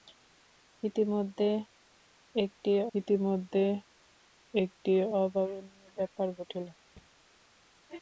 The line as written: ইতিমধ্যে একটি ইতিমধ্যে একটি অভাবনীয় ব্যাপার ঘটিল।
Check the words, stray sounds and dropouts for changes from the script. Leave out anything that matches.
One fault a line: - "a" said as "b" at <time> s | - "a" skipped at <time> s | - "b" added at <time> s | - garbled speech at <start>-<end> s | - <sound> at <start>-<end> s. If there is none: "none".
- thud at 7.0-7.1 s